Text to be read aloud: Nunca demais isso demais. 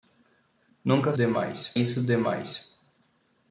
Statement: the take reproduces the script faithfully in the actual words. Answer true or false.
true